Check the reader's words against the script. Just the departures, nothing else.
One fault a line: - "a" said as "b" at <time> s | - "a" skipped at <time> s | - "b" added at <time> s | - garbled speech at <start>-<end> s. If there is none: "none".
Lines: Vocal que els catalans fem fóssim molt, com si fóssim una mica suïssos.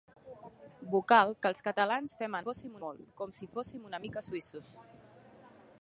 none